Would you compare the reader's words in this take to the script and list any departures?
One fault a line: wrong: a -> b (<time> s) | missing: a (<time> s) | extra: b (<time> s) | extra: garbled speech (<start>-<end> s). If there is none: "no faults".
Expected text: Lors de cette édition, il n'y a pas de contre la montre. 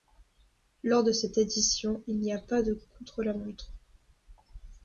no faults